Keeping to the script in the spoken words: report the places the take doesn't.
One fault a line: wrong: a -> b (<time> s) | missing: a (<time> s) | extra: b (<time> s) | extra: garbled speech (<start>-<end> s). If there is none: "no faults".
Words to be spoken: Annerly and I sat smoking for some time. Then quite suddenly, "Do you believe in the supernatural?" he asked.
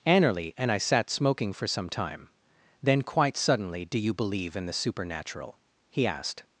no faults